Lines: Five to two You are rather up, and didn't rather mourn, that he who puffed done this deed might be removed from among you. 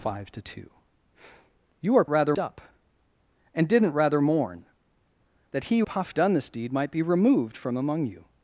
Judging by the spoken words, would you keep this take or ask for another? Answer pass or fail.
pass